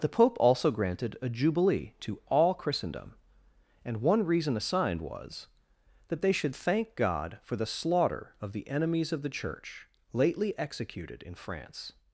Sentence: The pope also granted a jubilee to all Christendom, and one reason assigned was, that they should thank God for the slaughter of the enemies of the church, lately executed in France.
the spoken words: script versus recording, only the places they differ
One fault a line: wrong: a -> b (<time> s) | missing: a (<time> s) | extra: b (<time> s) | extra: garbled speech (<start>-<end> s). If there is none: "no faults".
no faults